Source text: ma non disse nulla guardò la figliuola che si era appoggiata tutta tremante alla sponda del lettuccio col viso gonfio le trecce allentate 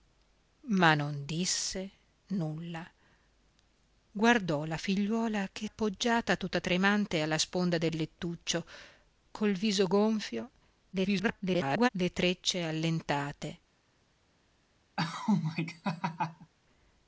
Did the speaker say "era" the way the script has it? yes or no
no